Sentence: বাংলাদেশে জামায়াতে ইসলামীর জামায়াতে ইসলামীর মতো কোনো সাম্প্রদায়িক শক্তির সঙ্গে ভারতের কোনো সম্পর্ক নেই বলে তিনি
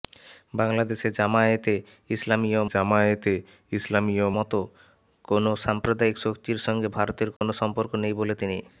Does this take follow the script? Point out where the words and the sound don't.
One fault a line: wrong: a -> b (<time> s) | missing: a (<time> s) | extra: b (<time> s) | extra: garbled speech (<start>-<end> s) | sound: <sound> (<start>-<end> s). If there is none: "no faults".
sound: dropout (7.4-7.4 s)